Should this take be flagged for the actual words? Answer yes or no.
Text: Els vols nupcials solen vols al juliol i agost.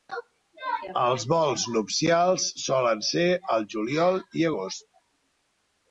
yes